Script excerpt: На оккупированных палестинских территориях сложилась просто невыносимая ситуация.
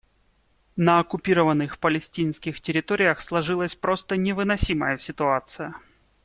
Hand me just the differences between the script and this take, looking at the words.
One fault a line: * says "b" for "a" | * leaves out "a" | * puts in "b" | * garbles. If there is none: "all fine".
all fine